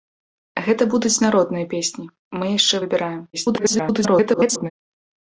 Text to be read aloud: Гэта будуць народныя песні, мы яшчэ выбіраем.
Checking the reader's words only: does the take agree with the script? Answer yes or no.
no